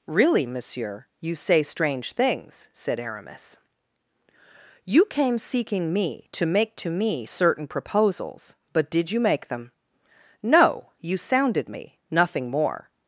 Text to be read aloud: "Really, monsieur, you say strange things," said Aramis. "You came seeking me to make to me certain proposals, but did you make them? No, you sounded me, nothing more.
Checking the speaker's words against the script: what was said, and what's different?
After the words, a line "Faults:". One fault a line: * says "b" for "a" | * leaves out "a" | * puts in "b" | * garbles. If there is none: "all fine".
"Really, monsieur, you say strange things," said Aramis. "You came seeking me to make to me certain proposals, but did you make them? No, you sounded me, nothing more.
Faults:
all fine